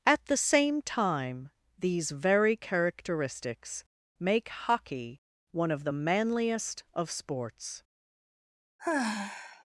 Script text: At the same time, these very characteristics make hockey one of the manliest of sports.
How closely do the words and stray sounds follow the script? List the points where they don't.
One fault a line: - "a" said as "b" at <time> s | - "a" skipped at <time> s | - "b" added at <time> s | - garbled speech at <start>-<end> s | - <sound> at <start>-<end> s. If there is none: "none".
- sigh at 8.8-9.6 s